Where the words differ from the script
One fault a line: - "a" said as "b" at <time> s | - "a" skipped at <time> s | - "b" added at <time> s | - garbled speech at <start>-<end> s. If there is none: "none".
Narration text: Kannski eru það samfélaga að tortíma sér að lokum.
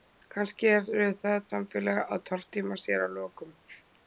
none